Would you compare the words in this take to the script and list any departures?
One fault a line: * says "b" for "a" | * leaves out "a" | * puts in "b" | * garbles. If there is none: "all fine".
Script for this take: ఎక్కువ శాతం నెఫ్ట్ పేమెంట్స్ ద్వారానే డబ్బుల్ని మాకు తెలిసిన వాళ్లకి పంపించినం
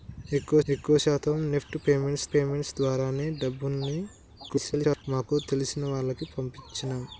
* puts in "ఎక్కువ"
* puts in "పేమెంట్స్"
* garbles